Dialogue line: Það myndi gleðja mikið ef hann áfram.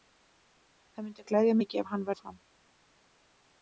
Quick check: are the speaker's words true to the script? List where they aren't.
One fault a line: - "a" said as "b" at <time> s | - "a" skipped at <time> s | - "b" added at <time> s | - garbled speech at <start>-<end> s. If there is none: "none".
none